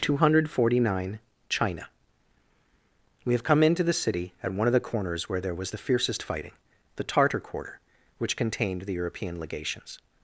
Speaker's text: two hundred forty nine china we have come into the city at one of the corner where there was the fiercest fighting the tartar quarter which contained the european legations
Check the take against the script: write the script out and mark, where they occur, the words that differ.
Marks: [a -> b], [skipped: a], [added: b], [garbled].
two hundred forty nine china we have come into the city at one of the [corner -> corners] where there was the fiercest fighting the tartar quarter which contained the european legations